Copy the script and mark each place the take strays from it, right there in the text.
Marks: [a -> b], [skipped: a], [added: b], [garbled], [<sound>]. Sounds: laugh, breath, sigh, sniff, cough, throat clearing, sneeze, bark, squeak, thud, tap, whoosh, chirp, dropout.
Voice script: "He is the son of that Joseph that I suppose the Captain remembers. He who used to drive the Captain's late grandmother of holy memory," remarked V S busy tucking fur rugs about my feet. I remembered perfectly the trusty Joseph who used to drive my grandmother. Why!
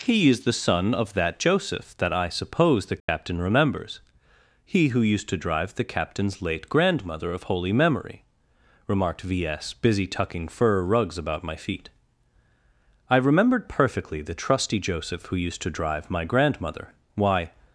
"He is the son of that Joseph that I suppose the Captain [dropout] remembers. He who used to drive the Captain's late grandmother of holy memory," remarked V S busy tucking fur rugs about my feet. I remembered perfectly the trusty Joseph who used to drive my grandmother. Why!